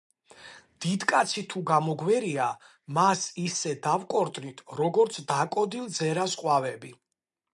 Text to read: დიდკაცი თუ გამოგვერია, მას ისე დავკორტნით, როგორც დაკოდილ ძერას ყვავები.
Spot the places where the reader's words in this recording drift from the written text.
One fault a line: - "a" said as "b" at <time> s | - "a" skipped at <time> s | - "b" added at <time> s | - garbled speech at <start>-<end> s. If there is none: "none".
none